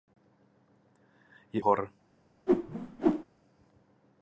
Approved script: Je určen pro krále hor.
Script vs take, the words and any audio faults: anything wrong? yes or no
yes